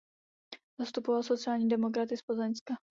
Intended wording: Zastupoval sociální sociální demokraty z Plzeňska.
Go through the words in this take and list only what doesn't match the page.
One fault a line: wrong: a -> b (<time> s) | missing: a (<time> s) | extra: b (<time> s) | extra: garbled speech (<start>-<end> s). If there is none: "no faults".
missing: sociální (1.7 s)